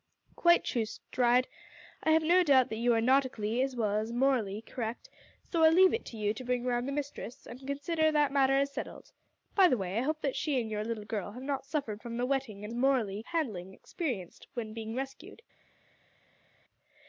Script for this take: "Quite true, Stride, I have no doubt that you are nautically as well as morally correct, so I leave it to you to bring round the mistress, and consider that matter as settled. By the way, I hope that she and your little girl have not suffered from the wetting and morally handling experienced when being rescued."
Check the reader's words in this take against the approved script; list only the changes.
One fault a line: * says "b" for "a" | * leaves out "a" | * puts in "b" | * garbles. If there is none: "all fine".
all fine